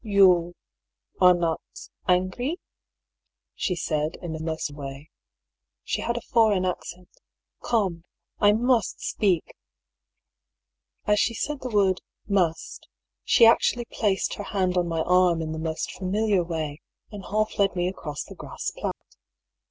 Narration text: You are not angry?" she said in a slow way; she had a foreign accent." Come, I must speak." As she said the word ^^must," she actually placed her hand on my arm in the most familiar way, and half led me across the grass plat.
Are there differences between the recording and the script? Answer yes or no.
yes